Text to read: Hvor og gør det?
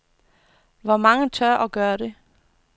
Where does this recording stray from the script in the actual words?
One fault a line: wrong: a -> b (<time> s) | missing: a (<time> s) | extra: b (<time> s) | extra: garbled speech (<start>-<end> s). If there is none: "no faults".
extra: mange tør (1.0 s)